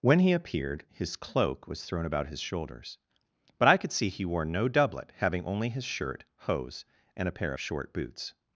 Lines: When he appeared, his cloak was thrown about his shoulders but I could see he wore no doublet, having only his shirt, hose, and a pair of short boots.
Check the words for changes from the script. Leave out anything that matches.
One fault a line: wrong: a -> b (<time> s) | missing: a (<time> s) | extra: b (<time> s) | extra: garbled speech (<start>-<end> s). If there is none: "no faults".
no faults